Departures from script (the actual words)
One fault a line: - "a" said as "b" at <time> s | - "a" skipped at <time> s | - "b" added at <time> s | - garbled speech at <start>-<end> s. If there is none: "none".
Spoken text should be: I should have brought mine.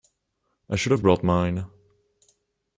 none